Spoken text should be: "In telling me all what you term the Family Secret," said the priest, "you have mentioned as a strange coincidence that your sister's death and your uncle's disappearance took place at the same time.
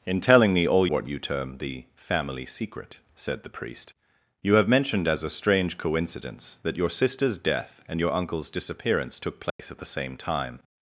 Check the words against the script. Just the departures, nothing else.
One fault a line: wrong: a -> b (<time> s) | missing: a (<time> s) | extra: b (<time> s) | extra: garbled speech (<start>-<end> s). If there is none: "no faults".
no faults